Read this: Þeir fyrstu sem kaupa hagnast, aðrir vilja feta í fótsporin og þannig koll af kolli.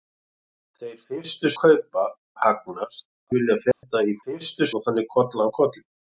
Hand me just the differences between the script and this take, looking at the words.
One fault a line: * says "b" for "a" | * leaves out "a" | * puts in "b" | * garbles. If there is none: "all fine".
* leaves out "sem"
* leaves out "aðrir"
* says "fyrstu" for "fótsporin"